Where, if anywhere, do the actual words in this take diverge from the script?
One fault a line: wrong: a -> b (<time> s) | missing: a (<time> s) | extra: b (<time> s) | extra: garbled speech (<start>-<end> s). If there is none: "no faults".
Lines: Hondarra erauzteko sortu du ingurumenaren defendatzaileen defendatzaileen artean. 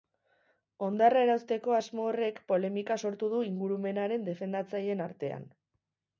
extra: asmo horrek polemika (1.8 s)
missing: defendatzaileen (5.1 s)